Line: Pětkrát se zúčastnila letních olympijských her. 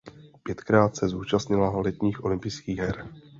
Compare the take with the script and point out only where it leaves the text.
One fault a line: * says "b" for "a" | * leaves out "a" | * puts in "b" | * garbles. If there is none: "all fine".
all fine